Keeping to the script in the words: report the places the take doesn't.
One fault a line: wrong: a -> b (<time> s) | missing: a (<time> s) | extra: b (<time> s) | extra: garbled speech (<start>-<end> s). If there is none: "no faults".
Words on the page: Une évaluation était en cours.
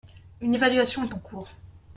wrong: était -> est (1.0 s)